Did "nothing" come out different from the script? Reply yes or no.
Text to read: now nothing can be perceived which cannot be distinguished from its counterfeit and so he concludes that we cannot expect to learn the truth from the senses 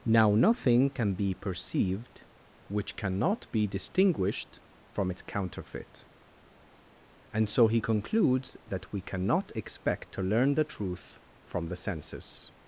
no